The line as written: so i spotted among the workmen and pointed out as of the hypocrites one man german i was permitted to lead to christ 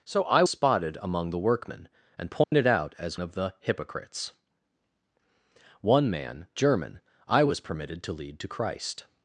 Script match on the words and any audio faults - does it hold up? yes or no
no